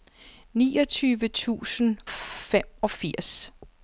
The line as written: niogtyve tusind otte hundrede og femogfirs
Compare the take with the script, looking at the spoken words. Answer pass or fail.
fail